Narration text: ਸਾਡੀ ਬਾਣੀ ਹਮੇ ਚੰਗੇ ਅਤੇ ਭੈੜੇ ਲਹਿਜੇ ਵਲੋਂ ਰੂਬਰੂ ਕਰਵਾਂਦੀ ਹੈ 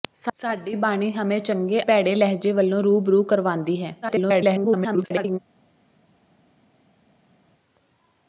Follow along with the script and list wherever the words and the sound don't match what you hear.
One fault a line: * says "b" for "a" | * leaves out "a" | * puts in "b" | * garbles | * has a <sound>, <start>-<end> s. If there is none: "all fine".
* leaves out "ਅਤੇ"
* garbles